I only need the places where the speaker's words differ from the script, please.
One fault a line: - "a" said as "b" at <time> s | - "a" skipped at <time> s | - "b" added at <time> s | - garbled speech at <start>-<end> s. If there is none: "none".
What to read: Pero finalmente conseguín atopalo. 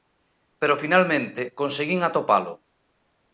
none